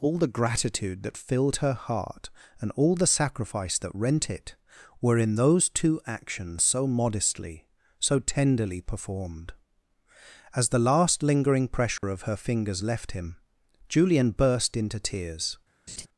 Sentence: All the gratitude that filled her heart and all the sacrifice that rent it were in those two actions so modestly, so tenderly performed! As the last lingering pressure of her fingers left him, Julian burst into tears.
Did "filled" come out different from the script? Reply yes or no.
no